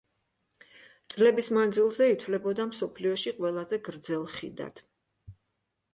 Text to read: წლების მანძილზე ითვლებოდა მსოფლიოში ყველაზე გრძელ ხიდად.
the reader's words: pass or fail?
pass